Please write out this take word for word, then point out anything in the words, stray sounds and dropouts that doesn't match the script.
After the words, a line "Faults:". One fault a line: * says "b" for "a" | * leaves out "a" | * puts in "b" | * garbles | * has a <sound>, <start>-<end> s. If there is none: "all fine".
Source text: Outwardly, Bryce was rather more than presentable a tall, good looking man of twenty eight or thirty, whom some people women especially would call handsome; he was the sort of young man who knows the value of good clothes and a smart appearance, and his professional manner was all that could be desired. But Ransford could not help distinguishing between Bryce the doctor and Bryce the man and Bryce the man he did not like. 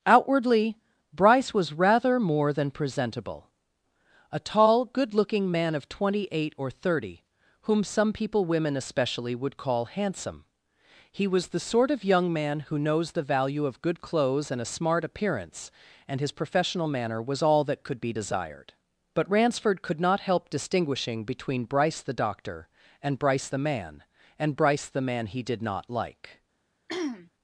Outwardly, Bryce was rather more than presentable a tall, good looking man of twenty eight or thirty, whom some people women especially would call handsome; he was the sort of young man who knows the value of good clothes and a smart appearance, and his professional manner was all that could be desired. But Ransford could not help distinguishing between Bryce the doctor and Bryce the man and Bryce the man he did not like.
Faults:
* has a throat clearing, 26.9-27.3 s